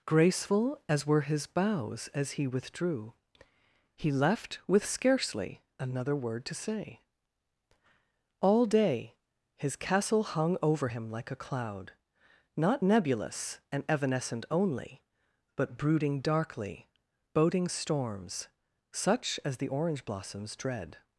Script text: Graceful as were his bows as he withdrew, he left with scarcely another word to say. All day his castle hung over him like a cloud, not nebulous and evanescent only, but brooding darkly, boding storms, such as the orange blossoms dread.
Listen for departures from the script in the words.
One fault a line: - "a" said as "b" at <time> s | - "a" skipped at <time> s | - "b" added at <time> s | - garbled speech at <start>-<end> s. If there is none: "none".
none